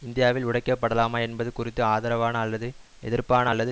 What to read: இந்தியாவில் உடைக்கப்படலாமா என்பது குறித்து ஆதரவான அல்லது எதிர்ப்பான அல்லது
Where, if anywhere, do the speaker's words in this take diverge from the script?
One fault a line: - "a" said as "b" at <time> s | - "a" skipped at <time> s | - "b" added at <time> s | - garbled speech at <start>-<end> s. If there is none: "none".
none